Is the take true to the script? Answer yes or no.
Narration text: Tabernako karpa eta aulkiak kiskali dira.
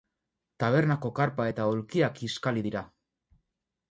yes